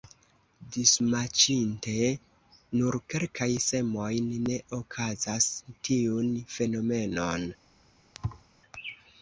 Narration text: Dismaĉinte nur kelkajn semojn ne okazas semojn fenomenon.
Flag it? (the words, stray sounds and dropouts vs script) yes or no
yes